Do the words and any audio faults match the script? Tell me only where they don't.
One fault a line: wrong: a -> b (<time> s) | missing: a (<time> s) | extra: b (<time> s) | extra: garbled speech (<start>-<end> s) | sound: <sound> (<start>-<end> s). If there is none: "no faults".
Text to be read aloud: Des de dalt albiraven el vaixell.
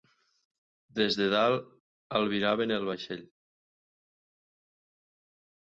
no faults